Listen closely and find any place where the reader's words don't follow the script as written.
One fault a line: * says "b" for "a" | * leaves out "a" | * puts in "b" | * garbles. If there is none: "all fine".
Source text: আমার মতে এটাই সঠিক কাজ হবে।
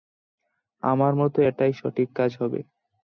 all fine